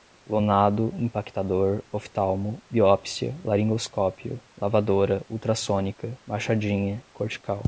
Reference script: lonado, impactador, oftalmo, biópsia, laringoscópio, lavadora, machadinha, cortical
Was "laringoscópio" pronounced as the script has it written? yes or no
yes